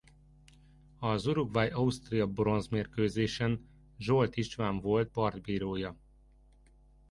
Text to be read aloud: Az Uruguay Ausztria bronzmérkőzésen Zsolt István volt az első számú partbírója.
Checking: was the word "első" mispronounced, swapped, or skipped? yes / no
yes